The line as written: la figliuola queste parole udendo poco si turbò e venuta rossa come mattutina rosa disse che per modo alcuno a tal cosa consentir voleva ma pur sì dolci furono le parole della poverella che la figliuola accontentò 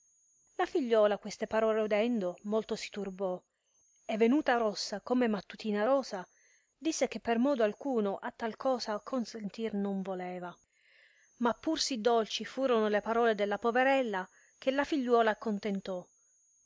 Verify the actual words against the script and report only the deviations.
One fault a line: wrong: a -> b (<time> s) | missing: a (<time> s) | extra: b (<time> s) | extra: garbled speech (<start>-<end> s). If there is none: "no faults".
wrong: poco -> molto (2.5 s)
extra: non (9.7 s)